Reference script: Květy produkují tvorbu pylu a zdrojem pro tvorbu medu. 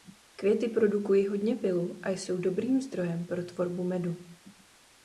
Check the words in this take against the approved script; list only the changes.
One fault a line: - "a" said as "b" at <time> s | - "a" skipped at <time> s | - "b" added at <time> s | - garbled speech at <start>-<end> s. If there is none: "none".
- "tvorbu" said as "hodně" at 1.3 s
- "jsou dobrým" added at 2.1 s